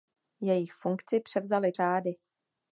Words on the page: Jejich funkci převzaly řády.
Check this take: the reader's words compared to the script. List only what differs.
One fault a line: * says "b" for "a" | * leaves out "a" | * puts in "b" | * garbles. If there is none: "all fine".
all fine